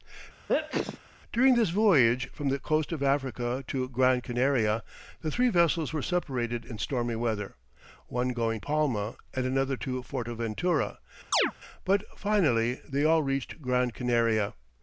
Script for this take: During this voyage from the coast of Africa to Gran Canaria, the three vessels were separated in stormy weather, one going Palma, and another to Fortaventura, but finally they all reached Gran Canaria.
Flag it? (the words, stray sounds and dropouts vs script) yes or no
yes